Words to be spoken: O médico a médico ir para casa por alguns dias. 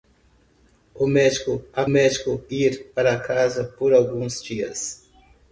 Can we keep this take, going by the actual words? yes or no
yes